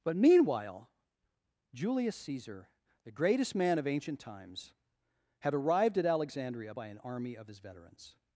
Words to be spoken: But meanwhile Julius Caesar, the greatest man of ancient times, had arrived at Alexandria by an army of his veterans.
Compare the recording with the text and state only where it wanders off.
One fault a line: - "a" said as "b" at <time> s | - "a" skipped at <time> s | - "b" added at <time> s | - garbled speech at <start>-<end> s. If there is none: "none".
none